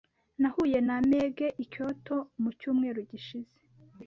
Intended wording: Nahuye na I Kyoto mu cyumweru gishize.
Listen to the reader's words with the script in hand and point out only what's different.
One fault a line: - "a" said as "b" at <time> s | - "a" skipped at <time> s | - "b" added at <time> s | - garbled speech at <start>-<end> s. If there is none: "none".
- "Meg" added at 1.1 s